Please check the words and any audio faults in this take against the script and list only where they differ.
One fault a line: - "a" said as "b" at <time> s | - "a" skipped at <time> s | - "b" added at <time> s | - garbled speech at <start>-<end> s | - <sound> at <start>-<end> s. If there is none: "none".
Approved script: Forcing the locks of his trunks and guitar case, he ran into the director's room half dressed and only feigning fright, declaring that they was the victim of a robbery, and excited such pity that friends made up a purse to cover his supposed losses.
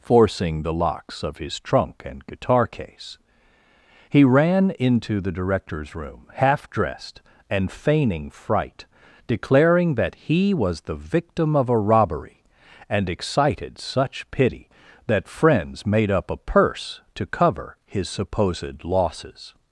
- "trunks" said as "trunk" at 1.6 s
- "only" skipped at 7.7 s
- "they" said as "he" at 10.1 s